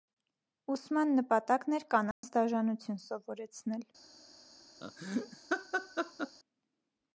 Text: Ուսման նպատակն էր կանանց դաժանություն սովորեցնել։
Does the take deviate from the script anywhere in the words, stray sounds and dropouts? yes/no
yes